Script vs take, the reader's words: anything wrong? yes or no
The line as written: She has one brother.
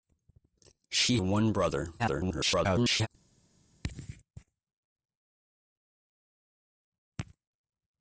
yes